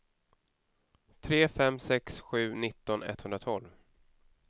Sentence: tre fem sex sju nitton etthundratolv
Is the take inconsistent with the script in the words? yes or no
no